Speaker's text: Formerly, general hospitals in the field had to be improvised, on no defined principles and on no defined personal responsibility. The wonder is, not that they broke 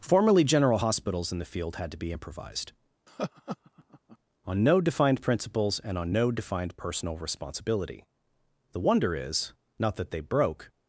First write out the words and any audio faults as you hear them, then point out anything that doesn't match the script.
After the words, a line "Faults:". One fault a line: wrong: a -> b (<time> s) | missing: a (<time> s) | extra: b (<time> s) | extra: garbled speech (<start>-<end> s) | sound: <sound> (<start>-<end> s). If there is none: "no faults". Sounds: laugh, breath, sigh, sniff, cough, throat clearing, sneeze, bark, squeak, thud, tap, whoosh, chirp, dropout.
Formerly, general hospitals in the field had to be improvised, on no defined principles and on no defined personal responsibility. The wonder is, not that they broke
Faults:
sound: laugh (3.1-4.2 s)